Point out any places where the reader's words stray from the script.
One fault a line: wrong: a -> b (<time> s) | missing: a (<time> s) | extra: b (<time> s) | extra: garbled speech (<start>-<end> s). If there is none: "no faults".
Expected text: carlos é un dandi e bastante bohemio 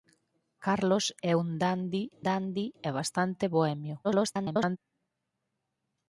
extra: dandi (2.3 s)
extra: garbled speech (4.0-4.8 s)